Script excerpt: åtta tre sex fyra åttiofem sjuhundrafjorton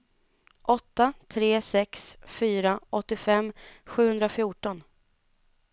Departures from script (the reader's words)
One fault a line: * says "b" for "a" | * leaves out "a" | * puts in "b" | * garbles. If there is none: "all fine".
all fine